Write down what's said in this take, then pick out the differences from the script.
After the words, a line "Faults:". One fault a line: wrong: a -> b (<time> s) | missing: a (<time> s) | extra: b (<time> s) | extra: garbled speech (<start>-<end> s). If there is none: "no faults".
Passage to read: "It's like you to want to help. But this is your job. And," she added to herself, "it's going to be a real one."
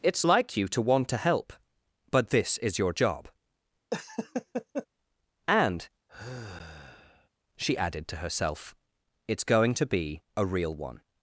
"It's like you to want to help. But this is your job. And," she added to herself, "it's going to be a real one."
Faults:
no faults